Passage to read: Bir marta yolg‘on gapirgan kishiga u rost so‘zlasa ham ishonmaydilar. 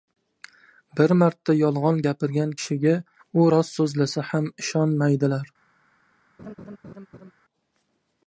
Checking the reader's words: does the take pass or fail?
pass